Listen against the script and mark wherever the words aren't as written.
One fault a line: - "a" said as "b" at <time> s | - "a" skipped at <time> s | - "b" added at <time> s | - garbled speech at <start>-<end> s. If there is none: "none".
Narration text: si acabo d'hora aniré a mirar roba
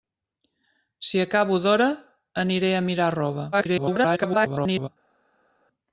- garbled speech at 3.5-4.9 s